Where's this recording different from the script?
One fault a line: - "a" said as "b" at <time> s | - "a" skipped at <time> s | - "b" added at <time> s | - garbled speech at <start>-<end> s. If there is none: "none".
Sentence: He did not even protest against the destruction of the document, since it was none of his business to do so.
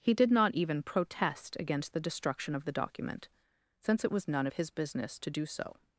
none